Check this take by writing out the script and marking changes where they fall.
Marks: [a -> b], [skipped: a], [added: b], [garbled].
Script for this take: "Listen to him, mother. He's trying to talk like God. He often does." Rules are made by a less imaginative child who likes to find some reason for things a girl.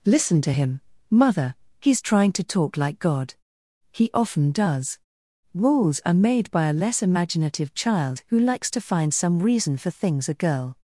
"Listen to him, mother. He's trying to talk like God. He often does." Rules are made by a less imaginative child who likes to find some reason for things a girl.